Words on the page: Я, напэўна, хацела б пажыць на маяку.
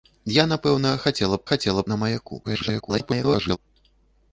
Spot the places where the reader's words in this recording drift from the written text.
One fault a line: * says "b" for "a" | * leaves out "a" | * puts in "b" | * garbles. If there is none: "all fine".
* says "хацела" for "пажыць"
* garbles